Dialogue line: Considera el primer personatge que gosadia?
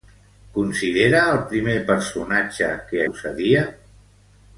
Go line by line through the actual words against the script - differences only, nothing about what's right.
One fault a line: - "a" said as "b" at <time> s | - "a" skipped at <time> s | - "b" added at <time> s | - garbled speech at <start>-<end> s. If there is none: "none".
none